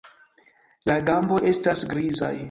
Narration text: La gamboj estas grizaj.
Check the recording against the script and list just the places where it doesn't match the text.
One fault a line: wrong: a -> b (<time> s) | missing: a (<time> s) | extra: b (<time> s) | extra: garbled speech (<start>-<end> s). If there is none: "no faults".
no faults